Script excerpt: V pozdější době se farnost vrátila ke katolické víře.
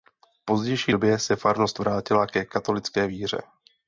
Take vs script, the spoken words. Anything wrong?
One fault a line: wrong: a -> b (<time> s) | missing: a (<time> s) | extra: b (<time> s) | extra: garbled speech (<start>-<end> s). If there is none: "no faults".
no faults